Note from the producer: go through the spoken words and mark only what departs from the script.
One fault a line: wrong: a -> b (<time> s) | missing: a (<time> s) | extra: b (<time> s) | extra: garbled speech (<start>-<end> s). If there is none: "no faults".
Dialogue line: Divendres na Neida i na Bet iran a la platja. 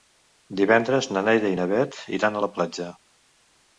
no faults